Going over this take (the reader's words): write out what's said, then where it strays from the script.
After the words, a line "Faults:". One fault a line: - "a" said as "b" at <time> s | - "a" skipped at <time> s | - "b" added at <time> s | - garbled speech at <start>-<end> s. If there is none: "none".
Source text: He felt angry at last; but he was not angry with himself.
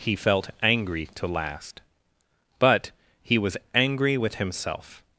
He felt angry to last; but he was angry with himself.
Faults:
- "at" said as "to" at 1.1 s
- "not" skipped at 3.5 s